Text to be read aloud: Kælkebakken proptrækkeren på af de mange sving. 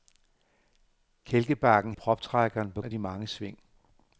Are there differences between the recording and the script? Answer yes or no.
no